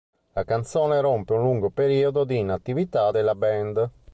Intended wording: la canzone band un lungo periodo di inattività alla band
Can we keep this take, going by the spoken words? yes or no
no